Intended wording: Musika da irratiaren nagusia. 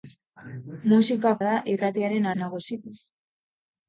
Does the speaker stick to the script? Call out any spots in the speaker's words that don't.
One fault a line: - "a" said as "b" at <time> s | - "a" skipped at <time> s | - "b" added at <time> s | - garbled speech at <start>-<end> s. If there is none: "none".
none